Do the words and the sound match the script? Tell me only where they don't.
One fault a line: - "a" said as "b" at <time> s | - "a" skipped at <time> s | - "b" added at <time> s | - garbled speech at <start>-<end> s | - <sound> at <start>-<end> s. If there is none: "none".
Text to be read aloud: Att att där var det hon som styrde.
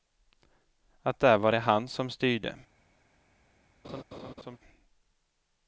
- "att" skipped at 1.2 s
- "hon" said as "han" at 1.6 s
- laugh at 3.8-4.6 s